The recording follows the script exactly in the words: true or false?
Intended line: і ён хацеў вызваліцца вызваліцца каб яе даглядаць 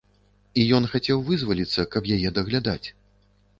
false